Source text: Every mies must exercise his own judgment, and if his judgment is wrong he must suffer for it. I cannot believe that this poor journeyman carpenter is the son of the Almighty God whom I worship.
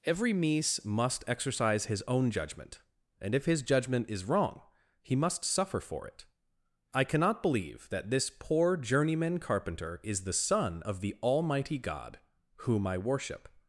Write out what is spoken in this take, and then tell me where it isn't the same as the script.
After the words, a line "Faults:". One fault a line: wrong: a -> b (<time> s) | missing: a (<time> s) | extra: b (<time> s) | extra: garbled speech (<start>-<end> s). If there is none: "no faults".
Every mies must exercise his own judgment, and if his judgment is wrong he must suffer for it. I cannot believe that this poor journeyman carpenter is the son of the Almighty God whom I worship.
Faults:
no faults